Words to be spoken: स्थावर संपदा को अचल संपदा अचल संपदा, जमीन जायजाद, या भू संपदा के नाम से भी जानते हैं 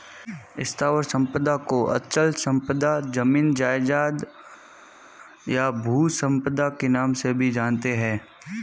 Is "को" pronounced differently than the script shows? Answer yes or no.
no